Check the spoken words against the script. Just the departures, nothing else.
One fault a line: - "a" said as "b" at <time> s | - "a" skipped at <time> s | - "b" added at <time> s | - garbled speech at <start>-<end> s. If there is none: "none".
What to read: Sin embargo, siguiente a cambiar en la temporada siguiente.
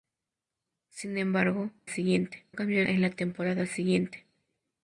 none